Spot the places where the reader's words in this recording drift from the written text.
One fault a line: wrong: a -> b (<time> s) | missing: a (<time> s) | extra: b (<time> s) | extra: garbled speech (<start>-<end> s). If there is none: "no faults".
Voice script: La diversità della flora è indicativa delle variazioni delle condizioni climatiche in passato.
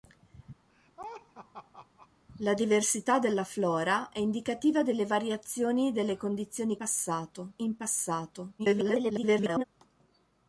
wrong: climatiche -> passato (6.8 s)
extra: garbled speech (8.6-9.6 s)